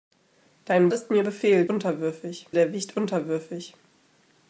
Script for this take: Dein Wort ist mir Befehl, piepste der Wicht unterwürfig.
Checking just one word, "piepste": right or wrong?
wrong